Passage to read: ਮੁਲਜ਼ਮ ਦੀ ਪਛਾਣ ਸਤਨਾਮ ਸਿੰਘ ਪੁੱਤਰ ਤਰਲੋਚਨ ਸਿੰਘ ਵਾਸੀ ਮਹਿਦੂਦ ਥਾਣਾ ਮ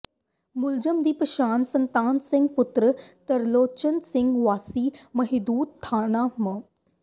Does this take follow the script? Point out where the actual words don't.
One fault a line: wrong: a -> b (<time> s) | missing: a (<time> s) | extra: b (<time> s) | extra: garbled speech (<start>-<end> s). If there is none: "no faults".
no faults